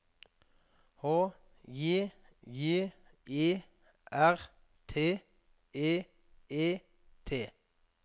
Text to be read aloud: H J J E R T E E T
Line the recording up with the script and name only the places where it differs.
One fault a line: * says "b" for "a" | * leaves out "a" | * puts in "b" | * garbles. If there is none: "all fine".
all fine